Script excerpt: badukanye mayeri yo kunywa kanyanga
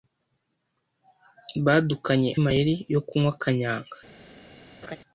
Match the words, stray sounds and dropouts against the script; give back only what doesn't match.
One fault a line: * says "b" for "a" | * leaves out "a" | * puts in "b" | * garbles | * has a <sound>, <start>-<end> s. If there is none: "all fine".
* has a laugh, 4.8-5.0 s